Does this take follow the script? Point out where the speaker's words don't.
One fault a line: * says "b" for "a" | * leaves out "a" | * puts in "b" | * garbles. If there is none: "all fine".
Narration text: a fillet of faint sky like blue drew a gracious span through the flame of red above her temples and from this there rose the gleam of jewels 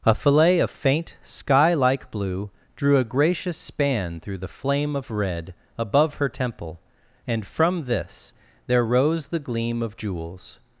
* says "temple" for "temples"